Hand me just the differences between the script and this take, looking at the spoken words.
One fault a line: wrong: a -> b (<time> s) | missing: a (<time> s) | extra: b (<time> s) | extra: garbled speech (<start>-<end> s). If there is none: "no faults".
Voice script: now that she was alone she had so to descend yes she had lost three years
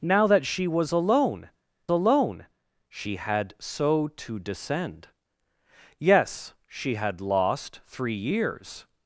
extra: alone (1.9 s)